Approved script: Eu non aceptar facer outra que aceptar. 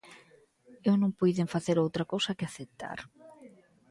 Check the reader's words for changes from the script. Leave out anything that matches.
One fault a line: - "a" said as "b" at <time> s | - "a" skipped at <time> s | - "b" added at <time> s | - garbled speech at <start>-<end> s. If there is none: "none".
- "aceptar" said as "puiden" at 1.2 s
- "cousa" added at 2.1 s